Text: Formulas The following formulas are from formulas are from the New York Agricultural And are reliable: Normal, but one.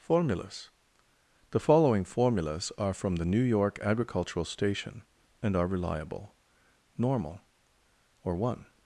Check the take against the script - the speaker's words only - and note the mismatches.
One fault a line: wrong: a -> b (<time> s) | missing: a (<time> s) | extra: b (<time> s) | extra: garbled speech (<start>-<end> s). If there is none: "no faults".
missing: formulas are from (3.2 s)
extra: Station (4.5 s)
wrong: but -> or (8.2 s)